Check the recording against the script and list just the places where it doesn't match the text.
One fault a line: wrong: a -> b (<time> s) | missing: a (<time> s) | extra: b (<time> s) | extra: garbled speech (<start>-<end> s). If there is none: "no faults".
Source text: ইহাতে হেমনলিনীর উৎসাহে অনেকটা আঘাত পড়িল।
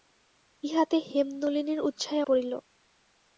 missing: অনেকটা আঘাত (2.2 s)